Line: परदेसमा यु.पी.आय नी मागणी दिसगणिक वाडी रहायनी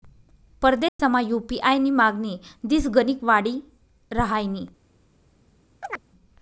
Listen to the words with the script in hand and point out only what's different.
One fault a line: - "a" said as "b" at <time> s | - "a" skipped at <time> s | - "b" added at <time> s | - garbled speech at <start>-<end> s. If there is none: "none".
none